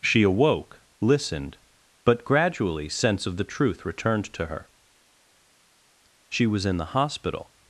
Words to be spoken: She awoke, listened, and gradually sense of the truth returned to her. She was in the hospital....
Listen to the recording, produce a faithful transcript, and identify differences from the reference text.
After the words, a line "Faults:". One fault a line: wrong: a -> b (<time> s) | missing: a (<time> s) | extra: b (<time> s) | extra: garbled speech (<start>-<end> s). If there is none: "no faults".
She awoke, listened, but gradually sense of the truth returned to her. She was in the hospital....
Faults:
wrong: and -> but (2.0 s)